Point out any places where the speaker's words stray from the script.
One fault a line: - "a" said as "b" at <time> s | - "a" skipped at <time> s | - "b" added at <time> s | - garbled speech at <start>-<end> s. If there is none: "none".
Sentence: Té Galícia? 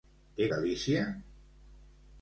none